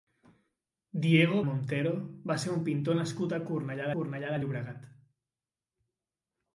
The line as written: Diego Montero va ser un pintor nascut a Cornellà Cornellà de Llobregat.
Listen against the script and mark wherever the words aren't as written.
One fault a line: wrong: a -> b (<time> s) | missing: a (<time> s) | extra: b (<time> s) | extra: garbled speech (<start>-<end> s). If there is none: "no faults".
no faults